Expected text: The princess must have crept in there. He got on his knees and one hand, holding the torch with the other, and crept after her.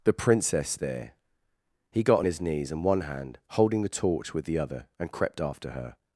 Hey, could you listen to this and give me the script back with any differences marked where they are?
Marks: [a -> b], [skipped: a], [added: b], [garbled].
The princess [skipped: must have crept in] there. He got on his knees and one hand, holding the torch with the other, and crept after her.